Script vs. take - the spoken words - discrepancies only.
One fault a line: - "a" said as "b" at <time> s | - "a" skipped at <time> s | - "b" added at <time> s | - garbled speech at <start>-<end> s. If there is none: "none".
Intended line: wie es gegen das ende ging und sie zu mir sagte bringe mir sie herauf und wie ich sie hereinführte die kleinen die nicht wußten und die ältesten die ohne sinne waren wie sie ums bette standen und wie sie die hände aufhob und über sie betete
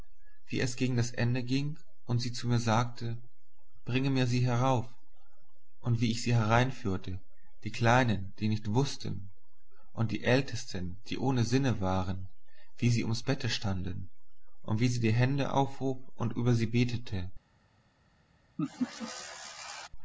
none